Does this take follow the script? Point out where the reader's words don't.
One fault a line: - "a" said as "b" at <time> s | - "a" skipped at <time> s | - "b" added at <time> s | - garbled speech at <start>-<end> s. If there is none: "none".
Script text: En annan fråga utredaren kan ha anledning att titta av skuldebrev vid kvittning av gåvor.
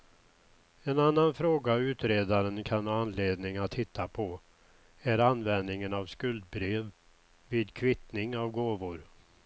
- "på är användningen" added at 4.1 s